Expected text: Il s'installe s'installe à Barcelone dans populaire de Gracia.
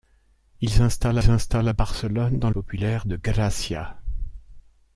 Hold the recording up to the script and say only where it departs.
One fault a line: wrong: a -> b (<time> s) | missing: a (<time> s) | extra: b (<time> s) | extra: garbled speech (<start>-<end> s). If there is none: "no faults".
no faults